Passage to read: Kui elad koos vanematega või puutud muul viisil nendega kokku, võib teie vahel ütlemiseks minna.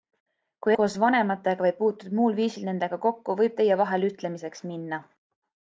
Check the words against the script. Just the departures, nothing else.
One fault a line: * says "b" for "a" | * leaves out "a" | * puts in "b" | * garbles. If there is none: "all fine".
* leaves out "elad"